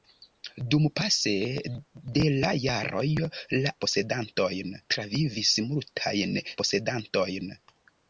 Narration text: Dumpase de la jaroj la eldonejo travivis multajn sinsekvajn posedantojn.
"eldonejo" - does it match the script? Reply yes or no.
no